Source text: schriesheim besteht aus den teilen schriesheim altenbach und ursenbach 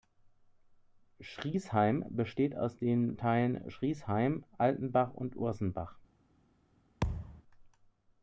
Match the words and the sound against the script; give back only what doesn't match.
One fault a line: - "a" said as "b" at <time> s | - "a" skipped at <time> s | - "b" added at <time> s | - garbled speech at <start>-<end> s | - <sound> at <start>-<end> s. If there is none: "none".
- thud at 7.0-7.4 s